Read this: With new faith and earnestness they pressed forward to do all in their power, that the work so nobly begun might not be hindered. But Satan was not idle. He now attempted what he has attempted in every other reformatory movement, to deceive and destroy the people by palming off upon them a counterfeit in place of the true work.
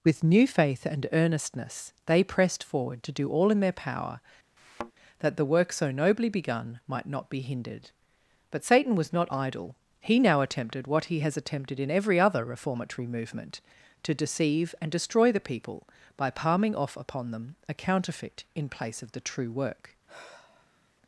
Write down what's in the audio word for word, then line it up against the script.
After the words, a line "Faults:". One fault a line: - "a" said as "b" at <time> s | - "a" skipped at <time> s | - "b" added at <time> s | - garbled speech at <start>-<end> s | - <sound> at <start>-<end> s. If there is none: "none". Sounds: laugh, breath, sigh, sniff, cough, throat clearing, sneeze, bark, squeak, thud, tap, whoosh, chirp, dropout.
With new faith and earnestness they pressed forward to do all in their power, that the work so nobly begun might not be hindered. But Satan was not idle. He now attempted what he has attempted in every other reformatory movement, to deceive and destroy the people by palming off upon them a counterfeit in place of the true work.
Faults:
- thud at 4.6-4.9 s
- sigh at 20.1-20.9 s